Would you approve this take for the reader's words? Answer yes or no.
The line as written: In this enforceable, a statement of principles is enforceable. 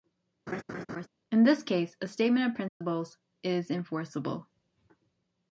no